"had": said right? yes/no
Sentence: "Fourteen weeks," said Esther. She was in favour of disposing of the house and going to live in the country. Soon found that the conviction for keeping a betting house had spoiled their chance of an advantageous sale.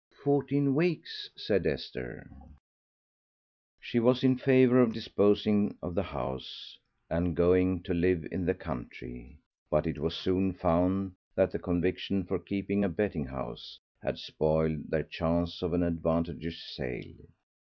yes